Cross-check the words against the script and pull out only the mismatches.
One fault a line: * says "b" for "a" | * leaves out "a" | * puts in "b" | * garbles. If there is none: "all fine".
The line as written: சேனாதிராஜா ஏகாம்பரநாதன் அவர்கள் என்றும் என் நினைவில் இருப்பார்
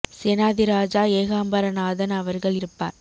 * leaves out "என்றும் என் நினைவில்"